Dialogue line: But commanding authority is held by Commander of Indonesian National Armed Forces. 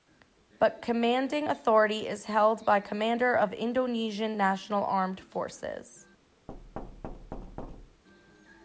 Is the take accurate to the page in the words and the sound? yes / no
no